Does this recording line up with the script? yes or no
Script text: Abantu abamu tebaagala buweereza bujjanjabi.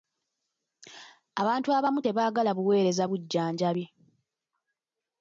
yes